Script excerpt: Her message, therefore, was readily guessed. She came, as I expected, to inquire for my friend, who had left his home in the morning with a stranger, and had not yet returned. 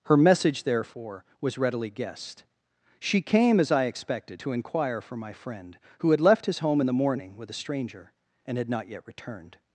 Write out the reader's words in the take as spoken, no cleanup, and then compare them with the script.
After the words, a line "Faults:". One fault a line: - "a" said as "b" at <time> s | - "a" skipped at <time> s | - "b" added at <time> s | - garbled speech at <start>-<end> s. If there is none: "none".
Her message, therefore, was readily guessed. She came, as I expected, to inquire for my friend, who had left his home in the morning with a stranger, and had not yet returned.
Faults:
none